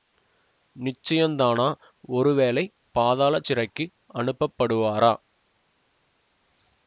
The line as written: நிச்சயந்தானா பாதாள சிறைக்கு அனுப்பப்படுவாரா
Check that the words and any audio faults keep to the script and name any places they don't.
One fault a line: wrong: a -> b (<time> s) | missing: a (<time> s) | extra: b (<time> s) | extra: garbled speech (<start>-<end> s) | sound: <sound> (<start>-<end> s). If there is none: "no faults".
extra: ஒருவேளை (2.1 s)